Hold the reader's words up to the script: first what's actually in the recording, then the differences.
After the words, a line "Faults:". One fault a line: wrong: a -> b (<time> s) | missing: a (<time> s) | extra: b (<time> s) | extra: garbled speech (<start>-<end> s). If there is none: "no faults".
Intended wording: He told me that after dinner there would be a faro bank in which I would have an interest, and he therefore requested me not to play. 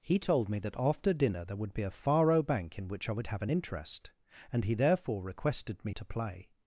He told me that after dinner there would be a faro bank in which I would have an interest, and he therefore requested me to play.
Faults:
missing: not (5.9 s)